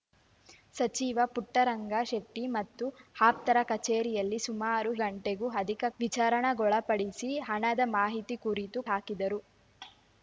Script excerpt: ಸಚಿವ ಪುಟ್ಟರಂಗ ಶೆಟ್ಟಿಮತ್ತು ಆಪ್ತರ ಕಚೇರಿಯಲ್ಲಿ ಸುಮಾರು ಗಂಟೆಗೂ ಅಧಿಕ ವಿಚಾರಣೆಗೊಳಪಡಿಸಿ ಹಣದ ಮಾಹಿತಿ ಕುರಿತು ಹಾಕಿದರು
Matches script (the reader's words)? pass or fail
pass